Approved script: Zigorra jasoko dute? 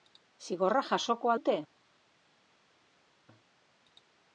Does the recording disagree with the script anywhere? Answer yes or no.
no